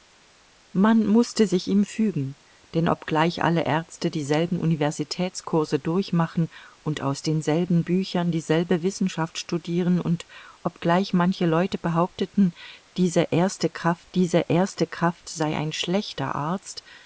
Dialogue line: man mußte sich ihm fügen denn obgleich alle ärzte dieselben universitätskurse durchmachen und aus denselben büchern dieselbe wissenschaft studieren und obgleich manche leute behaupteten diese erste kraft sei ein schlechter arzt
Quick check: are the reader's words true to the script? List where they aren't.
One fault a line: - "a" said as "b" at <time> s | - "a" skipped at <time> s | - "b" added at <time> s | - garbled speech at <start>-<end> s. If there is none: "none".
- "diese erste kraft" added at 14.1 s